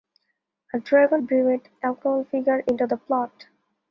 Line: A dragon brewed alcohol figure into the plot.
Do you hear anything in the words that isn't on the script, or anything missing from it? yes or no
no